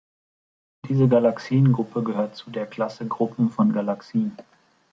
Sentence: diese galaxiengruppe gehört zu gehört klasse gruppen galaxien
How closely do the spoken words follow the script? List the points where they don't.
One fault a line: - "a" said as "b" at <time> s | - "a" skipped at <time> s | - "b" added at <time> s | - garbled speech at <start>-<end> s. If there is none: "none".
- "gehört" said as "der" at 2.5 s
- "von" added at 3.5 s